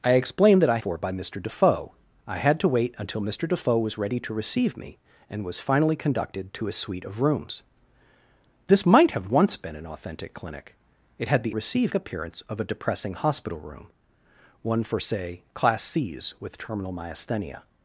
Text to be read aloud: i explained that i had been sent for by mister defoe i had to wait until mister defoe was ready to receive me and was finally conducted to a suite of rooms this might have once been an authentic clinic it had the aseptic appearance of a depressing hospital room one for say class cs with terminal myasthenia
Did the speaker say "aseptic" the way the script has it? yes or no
no